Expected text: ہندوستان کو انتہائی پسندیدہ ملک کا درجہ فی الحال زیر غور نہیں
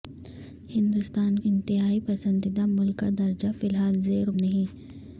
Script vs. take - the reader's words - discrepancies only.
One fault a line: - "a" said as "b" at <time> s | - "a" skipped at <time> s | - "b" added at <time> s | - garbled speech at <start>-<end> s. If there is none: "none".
- "کو" skipped at 1.4 s
- "غور" skipped at 4.3 s